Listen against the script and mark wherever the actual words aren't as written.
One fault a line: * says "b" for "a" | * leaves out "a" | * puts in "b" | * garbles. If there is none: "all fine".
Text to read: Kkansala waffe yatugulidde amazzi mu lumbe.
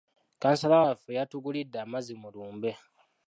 all fine